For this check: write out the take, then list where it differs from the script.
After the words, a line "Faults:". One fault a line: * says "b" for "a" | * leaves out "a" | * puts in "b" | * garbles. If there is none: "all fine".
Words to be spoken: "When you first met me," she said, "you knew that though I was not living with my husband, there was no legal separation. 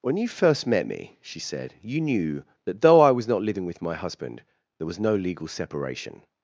"When you first met me," she said, "you knew that though I was not living with my husband, there was no legal separation.
Faults:
all fine